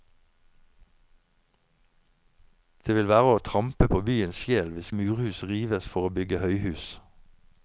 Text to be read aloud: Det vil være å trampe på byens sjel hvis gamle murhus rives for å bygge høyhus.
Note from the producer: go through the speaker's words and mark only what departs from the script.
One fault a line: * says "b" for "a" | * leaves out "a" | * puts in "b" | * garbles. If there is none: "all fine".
* leaves out "gamle"